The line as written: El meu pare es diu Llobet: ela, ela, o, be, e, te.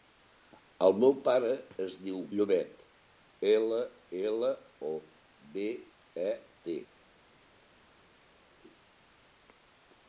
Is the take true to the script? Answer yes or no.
yes